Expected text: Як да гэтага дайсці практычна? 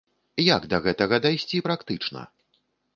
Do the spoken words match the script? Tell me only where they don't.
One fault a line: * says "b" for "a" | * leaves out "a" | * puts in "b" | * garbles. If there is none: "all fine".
all fine